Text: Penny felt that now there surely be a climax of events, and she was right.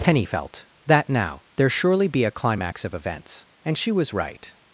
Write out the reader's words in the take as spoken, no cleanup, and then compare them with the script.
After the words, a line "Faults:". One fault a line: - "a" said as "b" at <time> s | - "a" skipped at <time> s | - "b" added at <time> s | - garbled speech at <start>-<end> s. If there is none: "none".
Penny felt that now there surely be a climax of events, and she was right.
Faults:
none